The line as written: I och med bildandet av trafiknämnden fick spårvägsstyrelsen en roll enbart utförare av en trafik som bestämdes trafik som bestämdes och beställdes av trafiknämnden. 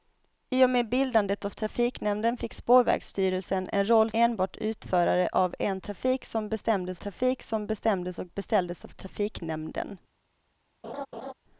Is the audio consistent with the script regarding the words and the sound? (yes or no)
no